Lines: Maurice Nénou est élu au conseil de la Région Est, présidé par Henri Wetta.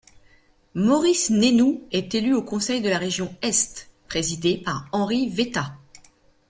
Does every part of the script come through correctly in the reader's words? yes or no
yes